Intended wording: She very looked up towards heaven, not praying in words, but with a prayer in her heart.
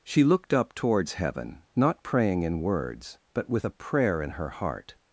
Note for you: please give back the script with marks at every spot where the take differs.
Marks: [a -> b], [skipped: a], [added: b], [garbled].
She [skipped: very] looked up towards heaven, not praying in words, but with a prayer in her heart.